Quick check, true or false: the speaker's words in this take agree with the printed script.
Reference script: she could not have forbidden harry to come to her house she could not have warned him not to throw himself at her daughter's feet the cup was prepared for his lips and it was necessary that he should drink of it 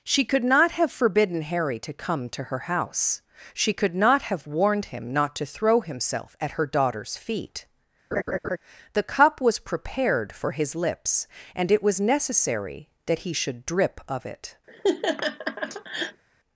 false